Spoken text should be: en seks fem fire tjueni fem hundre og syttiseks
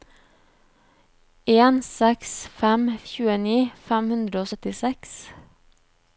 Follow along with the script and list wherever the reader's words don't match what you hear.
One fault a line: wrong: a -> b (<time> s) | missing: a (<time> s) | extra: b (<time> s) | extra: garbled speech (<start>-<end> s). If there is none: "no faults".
missing: fire (2.9 s)